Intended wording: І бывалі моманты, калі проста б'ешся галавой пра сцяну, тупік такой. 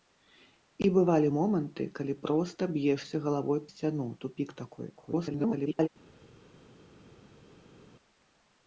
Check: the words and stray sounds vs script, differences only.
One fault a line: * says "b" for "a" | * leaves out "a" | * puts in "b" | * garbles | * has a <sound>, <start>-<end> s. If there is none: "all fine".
* leaves out "пра"
* garbles